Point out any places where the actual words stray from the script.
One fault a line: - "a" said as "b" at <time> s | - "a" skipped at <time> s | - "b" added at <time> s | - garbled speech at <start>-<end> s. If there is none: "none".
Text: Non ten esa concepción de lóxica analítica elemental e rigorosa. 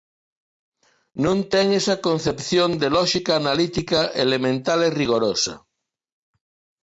none